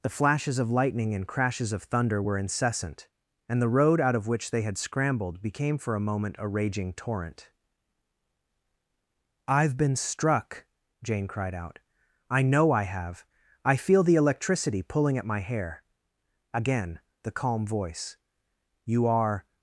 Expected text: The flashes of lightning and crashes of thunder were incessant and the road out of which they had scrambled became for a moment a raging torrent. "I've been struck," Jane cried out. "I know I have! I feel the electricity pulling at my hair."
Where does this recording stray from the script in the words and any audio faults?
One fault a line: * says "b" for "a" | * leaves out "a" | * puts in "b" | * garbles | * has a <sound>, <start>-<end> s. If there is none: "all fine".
* puts in "Again the calm voice You are"